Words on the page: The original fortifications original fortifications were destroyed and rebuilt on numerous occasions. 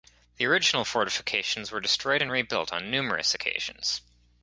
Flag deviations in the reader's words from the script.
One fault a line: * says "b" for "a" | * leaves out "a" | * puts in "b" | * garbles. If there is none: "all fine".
* leaves out "original fortifications"